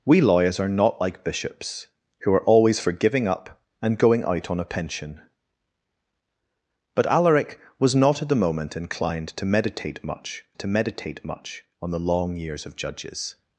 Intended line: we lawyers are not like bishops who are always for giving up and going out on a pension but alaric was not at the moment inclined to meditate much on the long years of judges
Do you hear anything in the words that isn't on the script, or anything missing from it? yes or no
yes